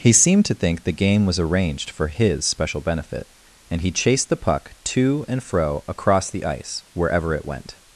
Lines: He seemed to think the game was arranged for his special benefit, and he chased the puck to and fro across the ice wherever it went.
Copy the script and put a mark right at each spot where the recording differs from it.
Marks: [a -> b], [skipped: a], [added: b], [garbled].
He seemed to think the game was arranged for his special benefit, and he chased the puck to and fro across the ice wherever it went.